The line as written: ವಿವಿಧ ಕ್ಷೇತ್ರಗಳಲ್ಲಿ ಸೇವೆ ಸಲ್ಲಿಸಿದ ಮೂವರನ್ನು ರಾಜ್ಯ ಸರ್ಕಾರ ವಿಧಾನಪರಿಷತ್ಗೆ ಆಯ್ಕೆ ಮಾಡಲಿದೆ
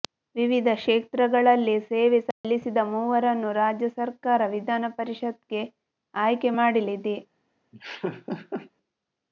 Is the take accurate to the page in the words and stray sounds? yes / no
no